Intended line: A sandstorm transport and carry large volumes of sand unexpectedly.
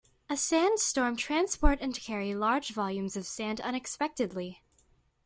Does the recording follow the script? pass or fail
pass